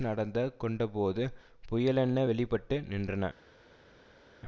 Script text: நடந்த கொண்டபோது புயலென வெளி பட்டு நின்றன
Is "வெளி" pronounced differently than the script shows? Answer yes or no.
no